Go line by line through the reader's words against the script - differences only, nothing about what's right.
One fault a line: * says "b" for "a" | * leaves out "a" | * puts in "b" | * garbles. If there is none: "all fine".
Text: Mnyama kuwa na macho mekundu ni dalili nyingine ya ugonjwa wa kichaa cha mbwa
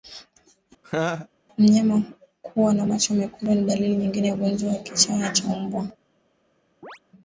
all fine